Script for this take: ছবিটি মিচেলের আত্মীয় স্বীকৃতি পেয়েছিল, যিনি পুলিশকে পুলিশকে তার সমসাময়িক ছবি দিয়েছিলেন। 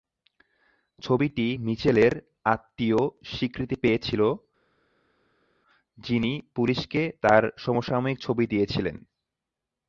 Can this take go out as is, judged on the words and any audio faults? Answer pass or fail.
fail